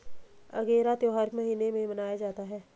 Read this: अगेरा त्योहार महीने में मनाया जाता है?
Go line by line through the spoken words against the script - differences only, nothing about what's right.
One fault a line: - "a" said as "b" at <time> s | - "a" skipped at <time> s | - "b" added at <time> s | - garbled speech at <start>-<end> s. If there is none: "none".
none